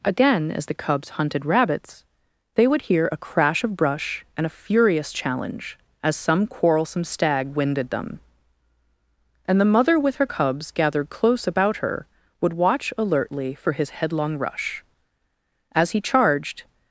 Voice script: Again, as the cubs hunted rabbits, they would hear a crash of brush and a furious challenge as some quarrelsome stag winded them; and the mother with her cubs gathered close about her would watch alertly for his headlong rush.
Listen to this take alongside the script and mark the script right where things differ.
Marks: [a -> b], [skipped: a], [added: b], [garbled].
Again, as the cubs hunted rabbits, they would hear a crash of brush and a furious challenge as some quarrelsome stag winded them; and the mother with her cubs gathered close about her would watch alertly for his headlong rush. [added: As he charged]